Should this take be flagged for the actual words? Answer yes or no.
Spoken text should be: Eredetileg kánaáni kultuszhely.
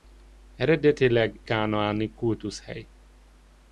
no